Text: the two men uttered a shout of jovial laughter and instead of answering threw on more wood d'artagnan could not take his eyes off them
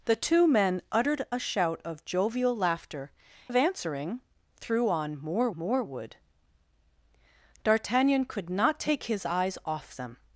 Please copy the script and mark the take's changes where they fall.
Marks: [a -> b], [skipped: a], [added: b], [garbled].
the two men uttered a shout of jovial laughter [skipped: and instead] of answering threw on more [added: more] wood d'artagnan could not take his eyes off them